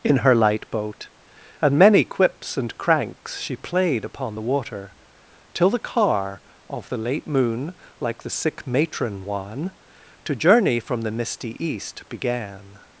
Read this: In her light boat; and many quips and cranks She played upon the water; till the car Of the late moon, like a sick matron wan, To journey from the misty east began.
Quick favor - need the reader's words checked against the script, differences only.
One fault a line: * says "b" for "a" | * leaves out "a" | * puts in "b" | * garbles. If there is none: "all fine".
* says "the" for "a"